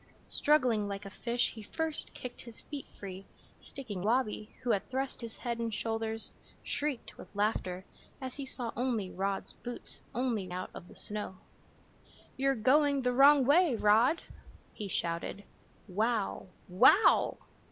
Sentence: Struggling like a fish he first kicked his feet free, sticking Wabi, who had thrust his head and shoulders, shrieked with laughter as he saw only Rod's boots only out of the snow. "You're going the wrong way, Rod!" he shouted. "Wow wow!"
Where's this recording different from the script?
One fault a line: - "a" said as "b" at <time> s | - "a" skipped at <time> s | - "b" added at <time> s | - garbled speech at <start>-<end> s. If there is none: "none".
none